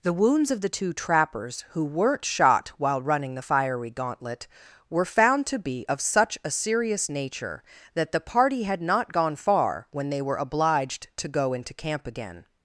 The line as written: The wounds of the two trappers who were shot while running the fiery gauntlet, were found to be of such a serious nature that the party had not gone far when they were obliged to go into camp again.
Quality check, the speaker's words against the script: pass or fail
fail